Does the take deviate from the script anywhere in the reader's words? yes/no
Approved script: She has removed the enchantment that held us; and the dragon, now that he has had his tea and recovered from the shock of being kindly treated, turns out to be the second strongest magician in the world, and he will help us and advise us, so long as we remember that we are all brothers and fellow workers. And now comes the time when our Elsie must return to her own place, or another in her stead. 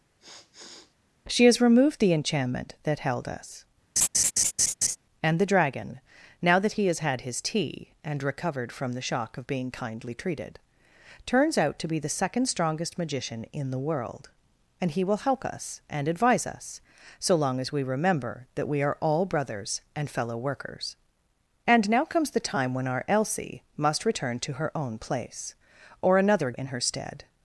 no